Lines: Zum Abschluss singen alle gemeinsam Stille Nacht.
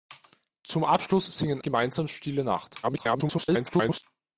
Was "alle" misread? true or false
true